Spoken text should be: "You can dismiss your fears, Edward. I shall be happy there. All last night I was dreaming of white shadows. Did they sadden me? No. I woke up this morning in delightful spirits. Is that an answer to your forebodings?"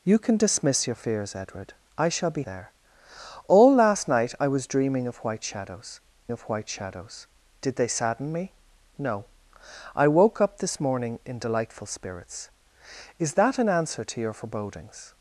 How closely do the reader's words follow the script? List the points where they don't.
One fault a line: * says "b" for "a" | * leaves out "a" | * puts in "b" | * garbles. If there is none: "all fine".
* leaves out "happy"
* puts in "of white shadows"